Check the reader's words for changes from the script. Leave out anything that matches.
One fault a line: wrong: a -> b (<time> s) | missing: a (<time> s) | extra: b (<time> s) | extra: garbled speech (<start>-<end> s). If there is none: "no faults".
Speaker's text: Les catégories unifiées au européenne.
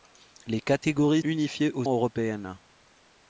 no faults